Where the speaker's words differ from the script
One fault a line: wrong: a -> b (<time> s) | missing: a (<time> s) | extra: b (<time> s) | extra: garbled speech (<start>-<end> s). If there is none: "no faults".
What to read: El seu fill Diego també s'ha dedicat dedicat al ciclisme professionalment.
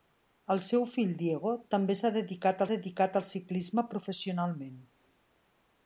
no faults